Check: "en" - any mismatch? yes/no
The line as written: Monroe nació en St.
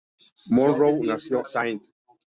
yes